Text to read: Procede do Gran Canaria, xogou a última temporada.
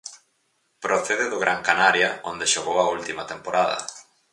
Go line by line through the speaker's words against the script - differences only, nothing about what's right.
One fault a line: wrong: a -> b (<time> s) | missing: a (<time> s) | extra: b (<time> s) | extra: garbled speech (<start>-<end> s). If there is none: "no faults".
extra: onde (2.3 s)